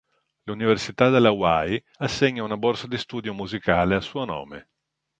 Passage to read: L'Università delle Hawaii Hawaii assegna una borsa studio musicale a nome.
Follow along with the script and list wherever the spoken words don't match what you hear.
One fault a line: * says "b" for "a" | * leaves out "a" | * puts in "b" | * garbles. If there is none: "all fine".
* leaves out "Hawaii"
* puts in "di"
* puts in "suo"